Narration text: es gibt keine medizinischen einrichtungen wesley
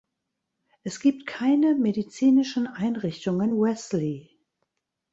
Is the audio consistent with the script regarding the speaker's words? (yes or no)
yes